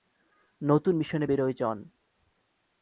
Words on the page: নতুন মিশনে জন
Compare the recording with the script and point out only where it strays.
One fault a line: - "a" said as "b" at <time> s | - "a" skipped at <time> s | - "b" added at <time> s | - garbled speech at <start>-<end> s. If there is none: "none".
- "বেরোয়" added at 1.2 s